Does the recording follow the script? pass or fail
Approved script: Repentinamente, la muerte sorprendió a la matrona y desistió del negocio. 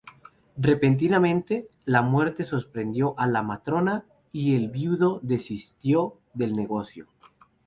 fail